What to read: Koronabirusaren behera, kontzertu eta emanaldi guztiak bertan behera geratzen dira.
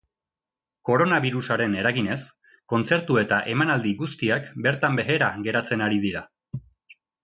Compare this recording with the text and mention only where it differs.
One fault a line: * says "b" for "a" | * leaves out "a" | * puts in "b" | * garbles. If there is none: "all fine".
* says "eraginez" for "behera"
* puts in "ari"